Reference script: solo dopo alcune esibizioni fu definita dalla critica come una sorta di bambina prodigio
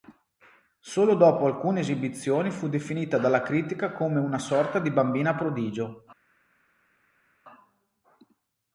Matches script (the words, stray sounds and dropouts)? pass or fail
pass